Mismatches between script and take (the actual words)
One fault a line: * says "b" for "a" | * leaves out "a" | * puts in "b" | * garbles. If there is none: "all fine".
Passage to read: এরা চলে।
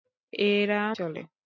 all fine